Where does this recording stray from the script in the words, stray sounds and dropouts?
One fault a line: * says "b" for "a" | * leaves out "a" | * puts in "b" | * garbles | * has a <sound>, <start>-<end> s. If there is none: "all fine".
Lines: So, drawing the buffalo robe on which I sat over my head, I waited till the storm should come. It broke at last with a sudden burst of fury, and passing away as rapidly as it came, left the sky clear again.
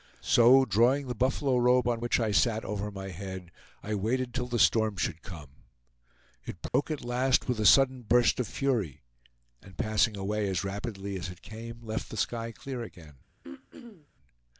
* has a dropout, 6.7-6.7 s
* has a throat clearing, 13.4-14.1 s